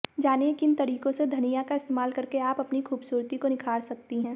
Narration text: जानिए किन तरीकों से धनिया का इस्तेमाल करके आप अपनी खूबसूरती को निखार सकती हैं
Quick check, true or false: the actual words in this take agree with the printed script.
true